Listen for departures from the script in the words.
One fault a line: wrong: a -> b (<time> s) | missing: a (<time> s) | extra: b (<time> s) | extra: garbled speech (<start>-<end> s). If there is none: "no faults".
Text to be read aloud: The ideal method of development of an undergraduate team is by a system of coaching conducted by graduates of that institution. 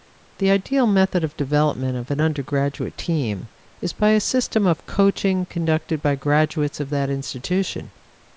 no faults